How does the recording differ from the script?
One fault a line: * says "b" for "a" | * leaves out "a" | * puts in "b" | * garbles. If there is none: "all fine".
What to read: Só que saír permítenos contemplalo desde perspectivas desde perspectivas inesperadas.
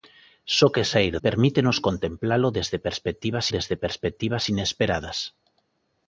all fine